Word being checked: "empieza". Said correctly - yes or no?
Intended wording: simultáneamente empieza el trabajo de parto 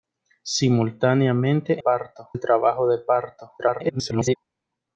no